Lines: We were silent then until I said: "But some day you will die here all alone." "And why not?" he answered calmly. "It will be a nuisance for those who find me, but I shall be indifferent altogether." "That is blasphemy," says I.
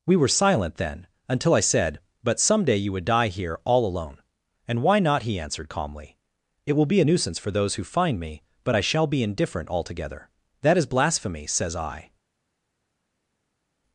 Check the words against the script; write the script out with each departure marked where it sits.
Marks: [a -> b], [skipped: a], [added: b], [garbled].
We were silent then until I said: "But some day you [will -> would] die here all alone." "And why not?" he answered calmly. "It will be a nuisance for those who find me, but I shall be indifferent altogether." "That is blasphemy," says I.